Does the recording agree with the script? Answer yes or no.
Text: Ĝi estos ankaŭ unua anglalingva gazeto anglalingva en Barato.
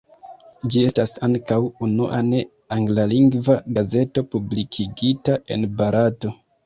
no